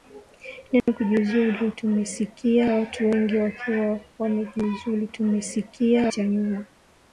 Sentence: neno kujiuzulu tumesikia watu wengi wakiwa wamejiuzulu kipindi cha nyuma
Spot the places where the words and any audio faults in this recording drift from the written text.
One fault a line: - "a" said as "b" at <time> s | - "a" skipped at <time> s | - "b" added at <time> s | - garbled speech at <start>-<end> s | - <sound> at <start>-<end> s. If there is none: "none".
- dropout at 0.8-0.9 s
- "kipindi" said as "tumesikia" at 5.1 s